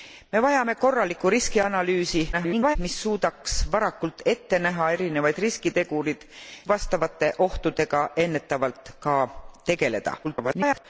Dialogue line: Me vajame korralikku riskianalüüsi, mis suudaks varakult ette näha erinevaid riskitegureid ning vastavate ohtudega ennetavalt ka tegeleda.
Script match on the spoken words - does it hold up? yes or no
no